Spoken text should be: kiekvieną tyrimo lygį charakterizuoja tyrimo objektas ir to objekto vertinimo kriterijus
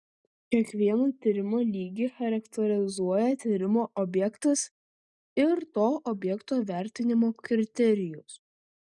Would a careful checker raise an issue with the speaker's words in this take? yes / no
no